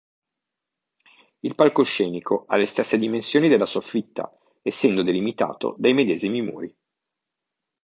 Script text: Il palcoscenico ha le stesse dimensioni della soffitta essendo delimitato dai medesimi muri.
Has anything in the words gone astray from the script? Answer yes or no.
no